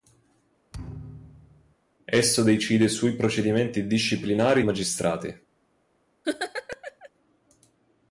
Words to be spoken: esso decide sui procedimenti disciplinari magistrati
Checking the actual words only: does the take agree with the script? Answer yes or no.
yes